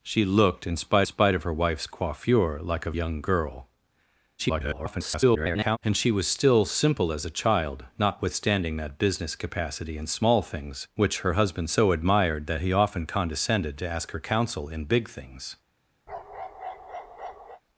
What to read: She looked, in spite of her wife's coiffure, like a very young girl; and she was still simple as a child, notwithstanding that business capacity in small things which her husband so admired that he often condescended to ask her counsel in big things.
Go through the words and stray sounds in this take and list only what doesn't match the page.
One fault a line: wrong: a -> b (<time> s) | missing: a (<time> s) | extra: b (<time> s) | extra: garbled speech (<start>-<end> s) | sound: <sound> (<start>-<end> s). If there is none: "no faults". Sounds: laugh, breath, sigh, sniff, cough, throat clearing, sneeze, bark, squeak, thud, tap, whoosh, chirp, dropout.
extra: spite (1.0 s)
missing: very (2.9 s)
extra: garbled speech (4.4-5.8 s)
sound: bark (16.1-17.6 s)